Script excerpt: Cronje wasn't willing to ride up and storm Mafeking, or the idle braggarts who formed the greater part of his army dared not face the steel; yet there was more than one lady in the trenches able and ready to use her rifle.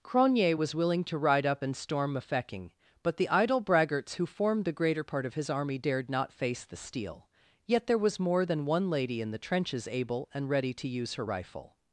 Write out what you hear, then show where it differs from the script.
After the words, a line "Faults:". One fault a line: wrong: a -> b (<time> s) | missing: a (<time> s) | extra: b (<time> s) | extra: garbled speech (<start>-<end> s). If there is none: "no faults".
Cronje was willing to ride up and storm Mafeking, but the idle braggarts who formed the greater part of his army dared not face the steel; yet there was more than one lady in the trenches able and ready to use her rifle.
Faults:
wrong: wasn't -> was (0.5 s)
wrong: or -> but (3.0 s)